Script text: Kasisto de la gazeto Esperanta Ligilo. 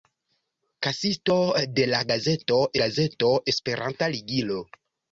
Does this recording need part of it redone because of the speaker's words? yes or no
yes